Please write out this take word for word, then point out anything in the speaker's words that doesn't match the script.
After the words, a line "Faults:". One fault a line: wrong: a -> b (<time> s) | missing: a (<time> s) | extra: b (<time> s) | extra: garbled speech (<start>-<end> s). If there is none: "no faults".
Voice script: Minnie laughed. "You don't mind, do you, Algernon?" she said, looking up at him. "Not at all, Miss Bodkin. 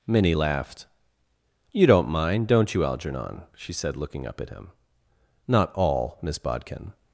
Minnie laughed. "You don't mind, don't you, Algernon?" she said, looking up at him. "Not all, Miss Bodkin.
Faults:
wrong: do -> don't (2.5 s)
missing: at (5.7 s)